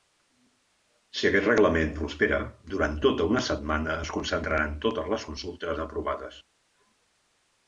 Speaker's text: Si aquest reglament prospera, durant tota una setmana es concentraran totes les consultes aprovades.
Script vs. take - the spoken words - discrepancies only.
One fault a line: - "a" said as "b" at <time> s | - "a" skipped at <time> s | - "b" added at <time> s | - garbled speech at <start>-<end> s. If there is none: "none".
none